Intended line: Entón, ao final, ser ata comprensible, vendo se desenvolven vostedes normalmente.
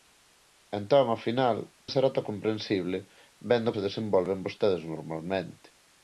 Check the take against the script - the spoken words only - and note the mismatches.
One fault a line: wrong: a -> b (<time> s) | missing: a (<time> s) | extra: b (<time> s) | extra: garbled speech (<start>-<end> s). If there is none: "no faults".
no faults